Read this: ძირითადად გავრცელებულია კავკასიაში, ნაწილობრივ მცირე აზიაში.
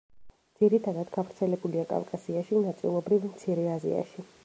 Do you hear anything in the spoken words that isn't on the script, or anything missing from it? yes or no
no